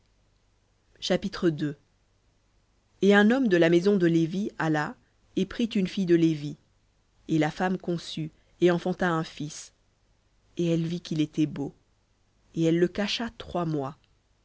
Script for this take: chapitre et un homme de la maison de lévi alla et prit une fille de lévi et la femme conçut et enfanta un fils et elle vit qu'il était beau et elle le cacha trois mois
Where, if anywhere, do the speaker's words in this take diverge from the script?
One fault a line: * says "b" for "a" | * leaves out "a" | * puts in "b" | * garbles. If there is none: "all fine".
all fine